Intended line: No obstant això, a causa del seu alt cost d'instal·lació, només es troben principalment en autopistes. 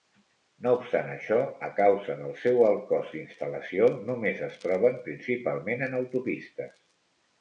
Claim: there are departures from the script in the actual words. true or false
false